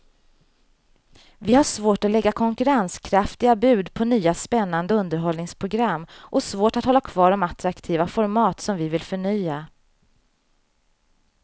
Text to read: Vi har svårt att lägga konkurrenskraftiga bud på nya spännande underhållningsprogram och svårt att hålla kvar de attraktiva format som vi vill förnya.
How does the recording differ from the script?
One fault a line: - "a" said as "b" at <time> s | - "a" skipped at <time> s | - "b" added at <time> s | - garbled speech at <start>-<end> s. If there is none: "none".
none